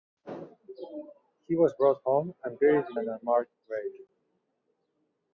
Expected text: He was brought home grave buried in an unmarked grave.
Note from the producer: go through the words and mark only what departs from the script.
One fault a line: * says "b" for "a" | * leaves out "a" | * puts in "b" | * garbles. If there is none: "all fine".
* says "and" for "grave"